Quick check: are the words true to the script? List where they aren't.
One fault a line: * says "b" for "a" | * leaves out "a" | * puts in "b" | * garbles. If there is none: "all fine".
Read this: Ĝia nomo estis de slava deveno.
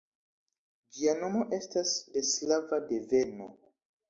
* says "estas" for "estis"